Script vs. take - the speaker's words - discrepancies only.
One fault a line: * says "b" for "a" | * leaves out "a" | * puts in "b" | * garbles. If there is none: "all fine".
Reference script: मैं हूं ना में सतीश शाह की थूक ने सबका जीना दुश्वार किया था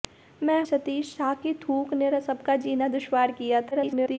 * leaves out "हूं ना में"
* garbles